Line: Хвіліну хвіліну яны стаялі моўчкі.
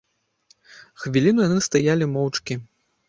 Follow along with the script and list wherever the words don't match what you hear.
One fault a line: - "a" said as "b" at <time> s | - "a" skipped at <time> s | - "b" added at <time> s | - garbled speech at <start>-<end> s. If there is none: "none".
- "хвіліну" skipped at 1.4 s